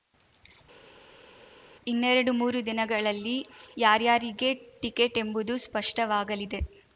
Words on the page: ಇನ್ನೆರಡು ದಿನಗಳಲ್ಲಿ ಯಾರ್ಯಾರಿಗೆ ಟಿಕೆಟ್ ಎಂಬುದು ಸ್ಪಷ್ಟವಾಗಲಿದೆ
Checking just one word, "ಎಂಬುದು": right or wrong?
right